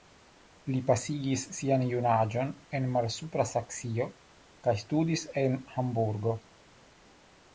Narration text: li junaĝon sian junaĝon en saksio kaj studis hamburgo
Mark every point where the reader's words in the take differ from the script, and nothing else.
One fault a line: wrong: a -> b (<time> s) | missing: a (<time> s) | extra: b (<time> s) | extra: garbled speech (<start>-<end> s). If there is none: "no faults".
wrong: junaĝon -> pasigis (0.8 s)
extra: malsupra (3.0 s)
extra: en (5.5 s)